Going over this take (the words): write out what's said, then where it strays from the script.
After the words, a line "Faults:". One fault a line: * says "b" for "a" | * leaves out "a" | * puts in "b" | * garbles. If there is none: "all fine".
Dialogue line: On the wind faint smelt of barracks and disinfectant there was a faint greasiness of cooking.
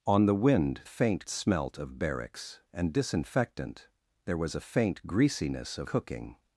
On the wind faint smelt of barracks and disinfectant there was a faint greasiness of cooking.
Faults:
all fine